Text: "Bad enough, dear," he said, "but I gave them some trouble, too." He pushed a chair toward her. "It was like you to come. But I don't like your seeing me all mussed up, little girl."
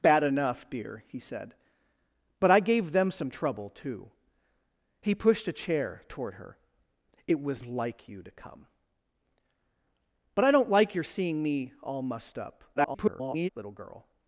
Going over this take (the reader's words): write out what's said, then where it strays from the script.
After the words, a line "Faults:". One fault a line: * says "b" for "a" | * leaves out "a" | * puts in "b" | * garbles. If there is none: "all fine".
"Bad enough, dear," he said, "but I gave them some trouble, too." He pushed a chair toward her. "It was like you to come. But I don't like your seeing me all mussed up, [garbled] little girl."
Faults:
* garbles